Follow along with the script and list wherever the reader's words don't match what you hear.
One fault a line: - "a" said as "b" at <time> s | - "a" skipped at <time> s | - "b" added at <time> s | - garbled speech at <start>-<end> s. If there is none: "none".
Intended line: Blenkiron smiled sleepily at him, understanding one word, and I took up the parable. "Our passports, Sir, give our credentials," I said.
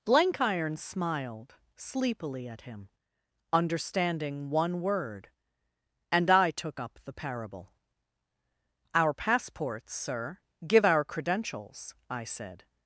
none